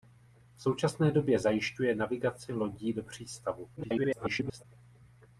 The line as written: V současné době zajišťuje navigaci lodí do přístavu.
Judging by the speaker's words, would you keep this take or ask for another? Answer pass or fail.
fail